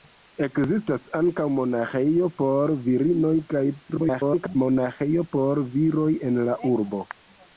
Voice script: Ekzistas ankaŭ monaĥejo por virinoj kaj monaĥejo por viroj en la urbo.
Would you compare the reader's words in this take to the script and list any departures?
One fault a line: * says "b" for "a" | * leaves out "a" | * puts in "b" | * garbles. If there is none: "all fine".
* garbles